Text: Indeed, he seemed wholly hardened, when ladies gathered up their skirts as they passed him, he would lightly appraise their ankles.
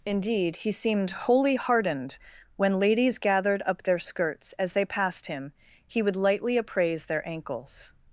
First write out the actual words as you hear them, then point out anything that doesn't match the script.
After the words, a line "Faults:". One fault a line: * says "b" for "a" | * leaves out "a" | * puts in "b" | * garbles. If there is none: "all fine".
Indeed, he seemed wholly hardened, when ladies gathered up their skirts as they passed him, he would lightly appraise their ankles.
Faults:
all fine